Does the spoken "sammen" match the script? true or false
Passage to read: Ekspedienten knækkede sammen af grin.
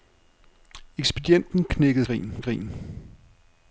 false